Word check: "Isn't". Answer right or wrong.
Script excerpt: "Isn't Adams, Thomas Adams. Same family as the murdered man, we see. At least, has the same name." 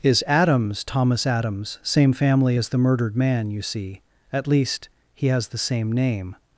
wrong